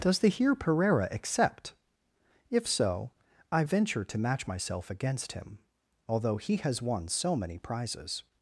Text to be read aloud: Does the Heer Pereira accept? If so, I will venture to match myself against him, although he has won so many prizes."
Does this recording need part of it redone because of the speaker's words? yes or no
yes